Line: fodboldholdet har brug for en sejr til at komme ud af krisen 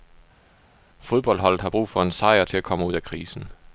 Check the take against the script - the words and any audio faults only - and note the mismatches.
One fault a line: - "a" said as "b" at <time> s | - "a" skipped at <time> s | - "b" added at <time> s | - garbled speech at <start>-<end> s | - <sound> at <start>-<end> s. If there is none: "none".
none